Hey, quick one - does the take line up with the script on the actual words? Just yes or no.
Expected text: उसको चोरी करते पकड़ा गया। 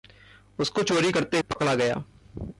yes